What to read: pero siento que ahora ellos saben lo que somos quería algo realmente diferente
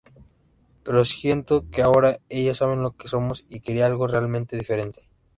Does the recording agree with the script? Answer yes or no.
no